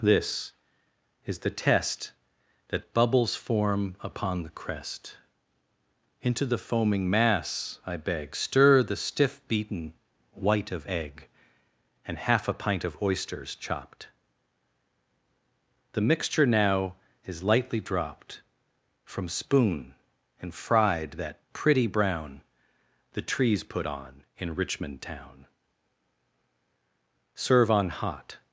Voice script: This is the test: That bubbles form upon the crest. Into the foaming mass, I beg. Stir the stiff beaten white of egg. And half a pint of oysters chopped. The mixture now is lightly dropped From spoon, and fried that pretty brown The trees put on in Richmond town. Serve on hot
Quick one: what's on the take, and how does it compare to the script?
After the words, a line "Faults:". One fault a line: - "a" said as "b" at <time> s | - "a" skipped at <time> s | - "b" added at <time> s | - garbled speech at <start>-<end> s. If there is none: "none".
This is the test: That bubbles form upon the crest. Into the foaming mass, I beg. Stir the stiff beaten white of egg. And half a pint of oysters chopped. The mixture now is lightly dropped From spoon, and fried that pretty brown The trees put on in Richmond town. Serve on hot
Faults:
none